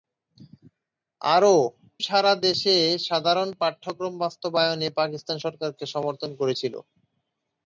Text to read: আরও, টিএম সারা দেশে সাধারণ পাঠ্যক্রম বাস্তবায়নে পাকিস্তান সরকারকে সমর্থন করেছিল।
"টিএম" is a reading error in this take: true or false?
true